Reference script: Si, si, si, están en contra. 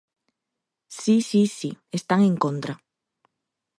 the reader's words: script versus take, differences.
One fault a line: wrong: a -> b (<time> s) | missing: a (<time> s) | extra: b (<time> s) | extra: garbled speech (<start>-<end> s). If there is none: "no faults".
no faults